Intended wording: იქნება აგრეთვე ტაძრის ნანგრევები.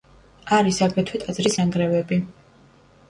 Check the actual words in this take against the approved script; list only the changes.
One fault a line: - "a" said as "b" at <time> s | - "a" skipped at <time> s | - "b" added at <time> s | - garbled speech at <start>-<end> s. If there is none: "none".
- "იქნება" said as "არის" at 0.6 s